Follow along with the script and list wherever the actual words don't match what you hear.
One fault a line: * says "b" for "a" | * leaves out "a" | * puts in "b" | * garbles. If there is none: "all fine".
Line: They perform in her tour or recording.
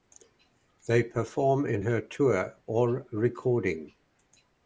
all fine